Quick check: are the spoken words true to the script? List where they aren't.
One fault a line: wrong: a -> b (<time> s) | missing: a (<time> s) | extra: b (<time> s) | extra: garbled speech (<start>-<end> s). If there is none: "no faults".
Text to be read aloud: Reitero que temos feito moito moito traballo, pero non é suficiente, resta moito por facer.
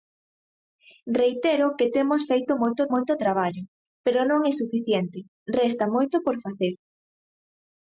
no faults